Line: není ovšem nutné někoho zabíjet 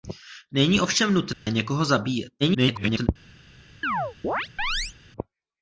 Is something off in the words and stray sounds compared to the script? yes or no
yes